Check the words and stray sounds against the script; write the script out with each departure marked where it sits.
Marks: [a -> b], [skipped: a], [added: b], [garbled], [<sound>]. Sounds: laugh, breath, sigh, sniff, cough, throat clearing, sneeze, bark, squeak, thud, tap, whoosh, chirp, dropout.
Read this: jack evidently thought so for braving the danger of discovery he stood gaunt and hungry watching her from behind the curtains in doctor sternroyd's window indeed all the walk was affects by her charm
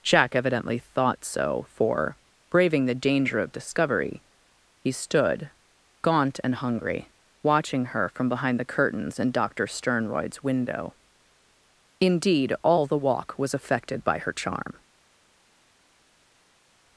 jack evidently thought so for braving the danger of discovery he stood gaunt and hungry watching her from behind the curtains in doctor sternroyd's window indeed all the walk was [affects -> affected] by her charm